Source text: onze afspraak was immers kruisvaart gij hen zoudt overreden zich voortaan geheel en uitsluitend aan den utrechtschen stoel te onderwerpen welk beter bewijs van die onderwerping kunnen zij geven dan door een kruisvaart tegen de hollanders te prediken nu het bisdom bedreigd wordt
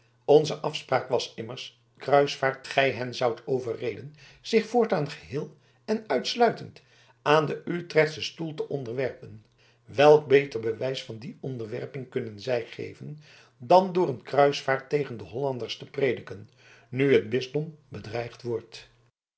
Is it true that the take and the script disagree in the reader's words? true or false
false